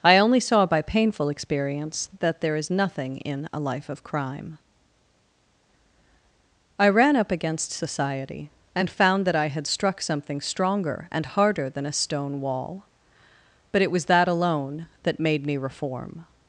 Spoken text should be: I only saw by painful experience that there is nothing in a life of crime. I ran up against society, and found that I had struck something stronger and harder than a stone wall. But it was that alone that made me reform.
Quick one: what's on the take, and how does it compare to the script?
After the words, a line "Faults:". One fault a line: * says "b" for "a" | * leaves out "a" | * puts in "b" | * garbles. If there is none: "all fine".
I only saw by painful experience that there is nothing in a life of crime. I ran up against society, and found that I had struck something stronger and harder than a stone wall. But it was that alone that made me reform.
Faults:
all fine